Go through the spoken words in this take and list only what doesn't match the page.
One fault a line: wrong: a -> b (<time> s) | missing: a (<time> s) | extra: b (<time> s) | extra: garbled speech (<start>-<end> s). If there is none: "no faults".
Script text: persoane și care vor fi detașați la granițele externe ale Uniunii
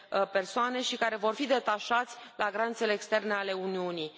no faults